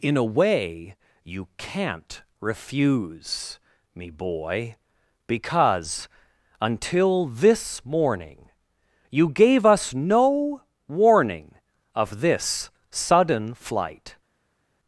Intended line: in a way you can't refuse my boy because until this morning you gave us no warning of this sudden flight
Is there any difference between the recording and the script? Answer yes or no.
yes